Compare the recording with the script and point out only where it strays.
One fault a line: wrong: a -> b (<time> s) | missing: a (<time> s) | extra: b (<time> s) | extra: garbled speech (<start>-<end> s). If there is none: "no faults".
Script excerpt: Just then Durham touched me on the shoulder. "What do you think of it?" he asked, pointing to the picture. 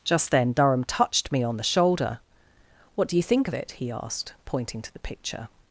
no faults